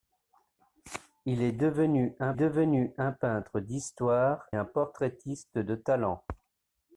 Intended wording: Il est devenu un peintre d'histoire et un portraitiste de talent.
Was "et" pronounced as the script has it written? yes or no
no